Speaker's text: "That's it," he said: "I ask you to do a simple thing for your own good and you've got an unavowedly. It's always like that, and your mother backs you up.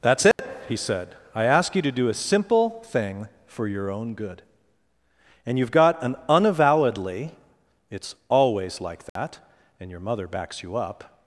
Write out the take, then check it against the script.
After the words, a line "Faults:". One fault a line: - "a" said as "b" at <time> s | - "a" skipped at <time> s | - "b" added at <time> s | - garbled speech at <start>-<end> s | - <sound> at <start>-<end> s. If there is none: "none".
"That's it," he said: "I ask you to do a simple thing for your own good and you've got an unavowedly. It's always like that, and your mother backs you up.
Faults:
- dropout at 0.3-0.4 s
- dropout at 9.1-9.2 s